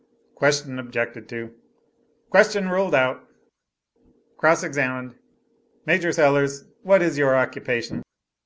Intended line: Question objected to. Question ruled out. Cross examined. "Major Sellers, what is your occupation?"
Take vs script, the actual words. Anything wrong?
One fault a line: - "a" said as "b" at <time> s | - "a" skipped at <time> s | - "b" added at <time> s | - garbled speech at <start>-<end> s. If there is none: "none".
none